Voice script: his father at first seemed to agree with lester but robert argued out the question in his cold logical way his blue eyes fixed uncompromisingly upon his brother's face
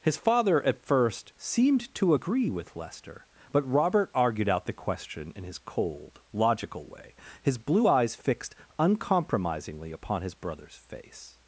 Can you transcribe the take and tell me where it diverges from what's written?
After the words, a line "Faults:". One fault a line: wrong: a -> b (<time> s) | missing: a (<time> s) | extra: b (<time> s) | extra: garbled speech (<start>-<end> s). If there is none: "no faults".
his father at first seemed to agree with lester but robert argued out the question in his cold logical way his blue eyes fixed uncompromisingly upon his brother's face
Faults:
no faults